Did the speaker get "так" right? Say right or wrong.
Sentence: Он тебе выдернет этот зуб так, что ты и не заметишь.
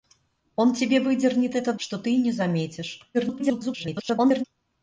wrong